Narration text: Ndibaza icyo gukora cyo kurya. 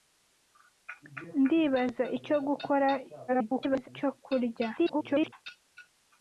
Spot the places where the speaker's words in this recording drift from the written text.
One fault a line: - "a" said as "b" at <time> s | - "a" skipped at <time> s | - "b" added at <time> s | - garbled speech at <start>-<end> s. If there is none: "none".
- garbled speech at 3.3-3.9 s
- garbled speech at 4.8-5.3 s